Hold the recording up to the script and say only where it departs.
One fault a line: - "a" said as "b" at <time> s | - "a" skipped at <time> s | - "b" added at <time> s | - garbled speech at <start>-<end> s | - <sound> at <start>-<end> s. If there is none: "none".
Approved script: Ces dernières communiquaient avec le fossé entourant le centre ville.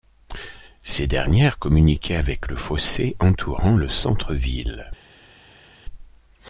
none